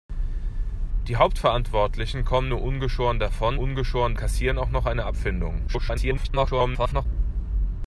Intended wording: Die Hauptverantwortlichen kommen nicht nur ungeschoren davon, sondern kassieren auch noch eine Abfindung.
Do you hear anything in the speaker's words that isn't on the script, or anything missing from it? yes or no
yes